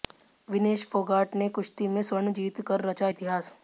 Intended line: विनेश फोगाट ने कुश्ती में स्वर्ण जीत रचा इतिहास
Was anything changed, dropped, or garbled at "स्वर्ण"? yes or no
no